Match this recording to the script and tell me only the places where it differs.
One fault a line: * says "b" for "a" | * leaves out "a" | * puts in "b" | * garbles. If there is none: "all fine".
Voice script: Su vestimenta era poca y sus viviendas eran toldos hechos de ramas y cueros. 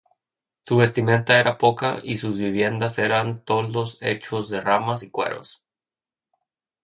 all fine